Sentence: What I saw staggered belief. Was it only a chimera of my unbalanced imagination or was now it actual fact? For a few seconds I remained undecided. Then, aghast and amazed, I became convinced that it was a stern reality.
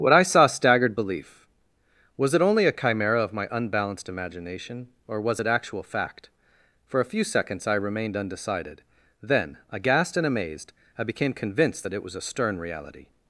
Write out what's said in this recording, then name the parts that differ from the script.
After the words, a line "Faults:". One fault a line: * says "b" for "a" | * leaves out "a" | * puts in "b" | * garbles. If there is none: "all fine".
What I saw staggered belief. Was it only a chimera of my unbalanced imagination or was it actual fact? For a few seconds I remained undecided. Then, aghast and amazed, I became convinced that it was a stern reality.
Faults:
* leaves out "now"